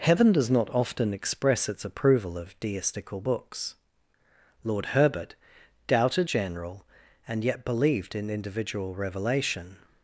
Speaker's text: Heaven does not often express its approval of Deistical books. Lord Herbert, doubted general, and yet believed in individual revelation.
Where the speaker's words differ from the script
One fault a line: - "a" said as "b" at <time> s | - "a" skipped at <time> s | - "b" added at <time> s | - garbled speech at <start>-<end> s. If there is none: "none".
none